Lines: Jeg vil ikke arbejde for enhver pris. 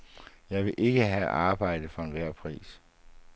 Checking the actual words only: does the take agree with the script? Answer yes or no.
no